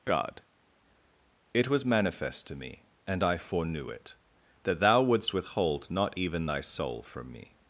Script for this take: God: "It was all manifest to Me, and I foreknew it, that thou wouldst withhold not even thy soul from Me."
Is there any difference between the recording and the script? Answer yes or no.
yes